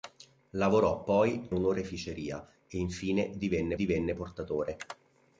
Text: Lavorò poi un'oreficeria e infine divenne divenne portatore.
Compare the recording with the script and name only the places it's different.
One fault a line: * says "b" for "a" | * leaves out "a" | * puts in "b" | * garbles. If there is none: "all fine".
all fine